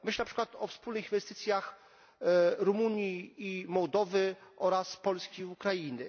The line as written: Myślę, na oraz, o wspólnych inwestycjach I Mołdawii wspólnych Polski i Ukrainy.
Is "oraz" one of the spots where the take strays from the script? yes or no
yes